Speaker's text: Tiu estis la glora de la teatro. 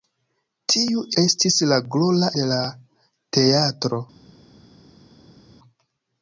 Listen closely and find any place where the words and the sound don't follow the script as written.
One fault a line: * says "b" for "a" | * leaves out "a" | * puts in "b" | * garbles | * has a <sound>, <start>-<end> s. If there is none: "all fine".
all fine